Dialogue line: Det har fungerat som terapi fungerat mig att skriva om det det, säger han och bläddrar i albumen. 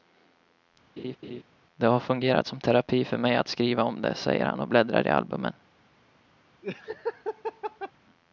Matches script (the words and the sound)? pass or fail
fail